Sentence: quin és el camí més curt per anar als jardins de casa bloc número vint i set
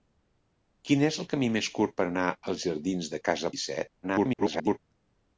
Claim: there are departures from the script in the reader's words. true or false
true